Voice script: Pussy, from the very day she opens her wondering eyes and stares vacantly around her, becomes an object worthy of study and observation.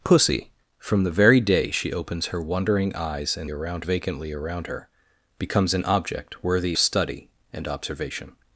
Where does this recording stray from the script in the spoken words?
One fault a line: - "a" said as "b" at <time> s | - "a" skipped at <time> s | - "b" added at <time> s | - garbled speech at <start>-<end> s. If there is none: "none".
- "stares" said as "around" at 3.5 s
- "of" skipped at 6.8 s